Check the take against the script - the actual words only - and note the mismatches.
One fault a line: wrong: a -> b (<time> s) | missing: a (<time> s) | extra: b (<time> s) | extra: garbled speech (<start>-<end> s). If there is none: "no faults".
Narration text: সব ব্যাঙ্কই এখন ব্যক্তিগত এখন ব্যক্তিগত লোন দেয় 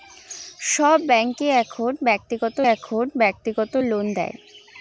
no faults